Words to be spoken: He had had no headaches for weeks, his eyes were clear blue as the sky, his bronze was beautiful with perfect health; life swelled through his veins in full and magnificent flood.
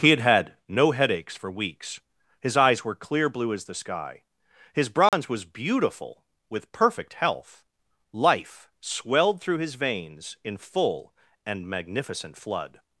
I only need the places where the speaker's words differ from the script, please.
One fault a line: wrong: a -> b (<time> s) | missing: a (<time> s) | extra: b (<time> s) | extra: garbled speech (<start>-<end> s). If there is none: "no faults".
no faults